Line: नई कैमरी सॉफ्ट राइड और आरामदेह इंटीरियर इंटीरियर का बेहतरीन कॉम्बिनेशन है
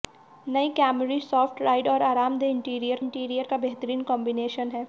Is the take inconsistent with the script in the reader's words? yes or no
no